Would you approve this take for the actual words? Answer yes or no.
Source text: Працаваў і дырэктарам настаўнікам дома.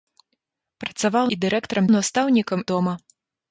yes